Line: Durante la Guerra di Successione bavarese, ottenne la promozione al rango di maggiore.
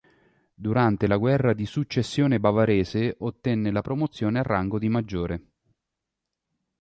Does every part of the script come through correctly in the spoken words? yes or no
yes